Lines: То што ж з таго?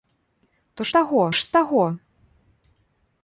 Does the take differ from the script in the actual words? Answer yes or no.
yes